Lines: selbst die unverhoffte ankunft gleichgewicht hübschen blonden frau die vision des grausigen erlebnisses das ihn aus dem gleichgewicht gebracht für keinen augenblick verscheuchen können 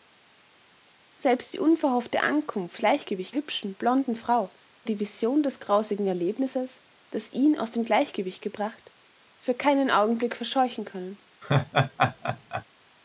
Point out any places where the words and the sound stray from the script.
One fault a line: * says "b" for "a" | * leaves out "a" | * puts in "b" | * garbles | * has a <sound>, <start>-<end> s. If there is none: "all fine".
* has a laugh, 11.4-12.6 s